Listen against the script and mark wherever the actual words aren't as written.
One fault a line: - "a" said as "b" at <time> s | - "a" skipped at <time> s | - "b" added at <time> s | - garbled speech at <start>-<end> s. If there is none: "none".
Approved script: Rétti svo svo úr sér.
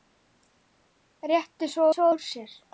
none